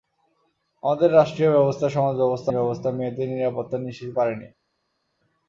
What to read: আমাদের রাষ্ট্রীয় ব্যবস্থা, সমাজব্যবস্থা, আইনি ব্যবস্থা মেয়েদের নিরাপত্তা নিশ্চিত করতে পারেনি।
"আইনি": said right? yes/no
no